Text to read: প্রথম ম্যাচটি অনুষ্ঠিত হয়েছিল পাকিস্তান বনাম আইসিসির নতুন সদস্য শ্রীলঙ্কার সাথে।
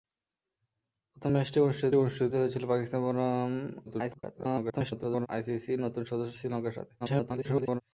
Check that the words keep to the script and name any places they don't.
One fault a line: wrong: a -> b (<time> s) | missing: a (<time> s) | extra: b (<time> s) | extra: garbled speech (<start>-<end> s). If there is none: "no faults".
extra: অনুষ্ঠিত (2.0 s)
extra: garbled speech (3.9-5.3 s)
extra: garbled speech (7.0-7.8 s)